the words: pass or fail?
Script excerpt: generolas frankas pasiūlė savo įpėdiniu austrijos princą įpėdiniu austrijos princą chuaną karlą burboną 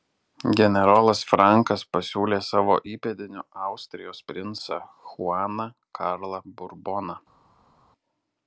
fail